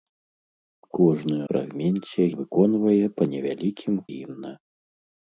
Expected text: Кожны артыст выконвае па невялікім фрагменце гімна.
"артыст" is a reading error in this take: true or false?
true